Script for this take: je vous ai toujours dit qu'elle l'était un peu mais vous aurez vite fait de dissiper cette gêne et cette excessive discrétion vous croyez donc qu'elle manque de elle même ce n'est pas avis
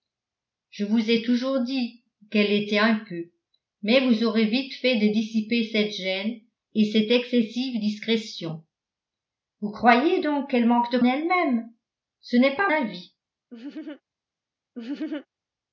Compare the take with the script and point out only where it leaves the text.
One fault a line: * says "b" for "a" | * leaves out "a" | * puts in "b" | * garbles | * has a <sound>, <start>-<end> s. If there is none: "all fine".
* has a laugh, 13.5-14.0 s
* has a laugh, 14.7-15.3 s